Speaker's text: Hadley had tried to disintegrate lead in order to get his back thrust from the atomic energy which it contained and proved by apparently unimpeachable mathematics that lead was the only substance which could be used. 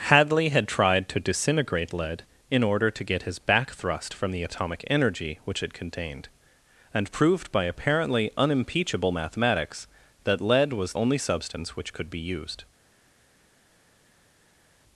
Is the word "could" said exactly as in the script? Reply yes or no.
yes